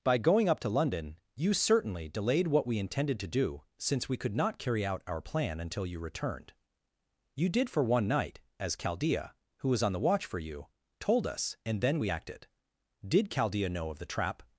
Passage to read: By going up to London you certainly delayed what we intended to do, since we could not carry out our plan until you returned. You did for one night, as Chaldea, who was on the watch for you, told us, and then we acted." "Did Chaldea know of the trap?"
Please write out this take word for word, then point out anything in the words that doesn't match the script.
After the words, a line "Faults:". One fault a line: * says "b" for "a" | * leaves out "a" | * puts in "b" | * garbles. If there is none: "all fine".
By going up to London you certainly delayed what we intended to do, since we could not carry out our plan until you returned. You did for one night, as Chaldea, who was on the watch for you, told us, and then we acted." "Did Chaldea know of the trap?"
Faults:
all fine